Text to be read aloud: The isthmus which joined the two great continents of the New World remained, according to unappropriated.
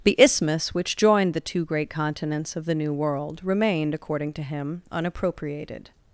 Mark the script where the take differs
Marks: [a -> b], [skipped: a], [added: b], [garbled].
The isthmus which joined the two great continents of the New World remained, according to [added: him] unappropriated.